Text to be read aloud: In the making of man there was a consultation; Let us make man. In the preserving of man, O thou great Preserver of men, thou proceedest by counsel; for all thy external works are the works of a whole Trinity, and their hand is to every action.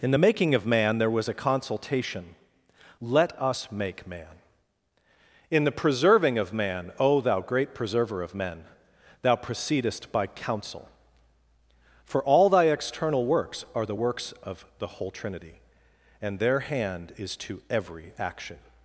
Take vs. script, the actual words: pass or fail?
fail